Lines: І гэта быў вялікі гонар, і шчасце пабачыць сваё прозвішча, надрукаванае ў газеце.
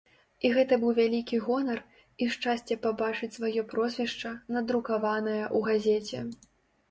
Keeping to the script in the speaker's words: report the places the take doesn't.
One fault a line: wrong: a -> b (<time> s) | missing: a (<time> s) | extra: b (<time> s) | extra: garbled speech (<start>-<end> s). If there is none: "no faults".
no faults